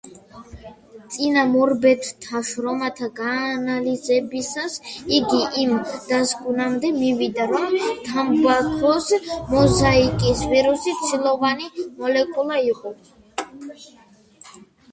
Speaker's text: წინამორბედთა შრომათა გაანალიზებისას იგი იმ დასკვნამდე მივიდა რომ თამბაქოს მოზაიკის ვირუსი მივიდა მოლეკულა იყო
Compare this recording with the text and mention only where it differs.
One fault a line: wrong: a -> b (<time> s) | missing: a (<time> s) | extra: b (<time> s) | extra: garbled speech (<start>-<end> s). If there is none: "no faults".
wrong: მივიდა -> ცილოვანი (11.0 s)